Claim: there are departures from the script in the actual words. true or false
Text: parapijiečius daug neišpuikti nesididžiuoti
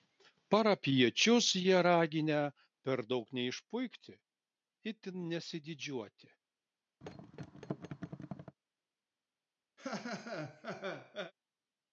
true